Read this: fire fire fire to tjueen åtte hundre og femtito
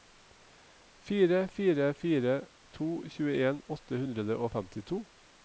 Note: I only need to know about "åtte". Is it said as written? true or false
true